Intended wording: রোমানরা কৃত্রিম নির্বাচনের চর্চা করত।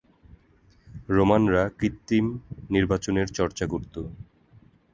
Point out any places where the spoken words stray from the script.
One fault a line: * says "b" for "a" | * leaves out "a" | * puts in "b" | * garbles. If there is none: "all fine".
all fine